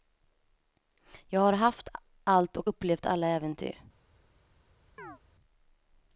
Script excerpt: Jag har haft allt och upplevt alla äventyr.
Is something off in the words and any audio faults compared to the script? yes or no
yes